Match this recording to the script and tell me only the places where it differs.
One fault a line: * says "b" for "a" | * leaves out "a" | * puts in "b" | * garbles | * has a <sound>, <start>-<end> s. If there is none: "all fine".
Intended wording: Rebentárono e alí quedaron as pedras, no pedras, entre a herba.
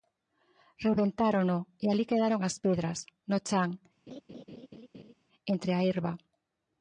* says "chan" for "pedras"
* has a laugh, 4.1-5.1 s